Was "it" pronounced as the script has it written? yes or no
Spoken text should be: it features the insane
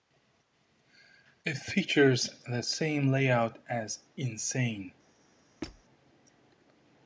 yes